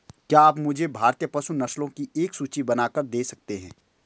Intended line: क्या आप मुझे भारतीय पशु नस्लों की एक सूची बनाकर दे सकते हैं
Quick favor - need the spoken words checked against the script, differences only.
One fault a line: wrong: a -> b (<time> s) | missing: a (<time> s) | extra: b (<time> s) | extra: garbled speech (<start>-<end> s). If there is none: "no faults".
no faults